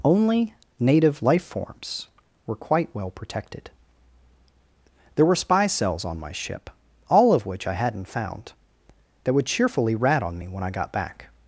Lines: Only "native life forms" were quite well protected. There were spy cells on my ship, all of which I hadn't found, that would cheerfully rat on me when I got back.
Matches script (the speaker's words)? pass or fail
pass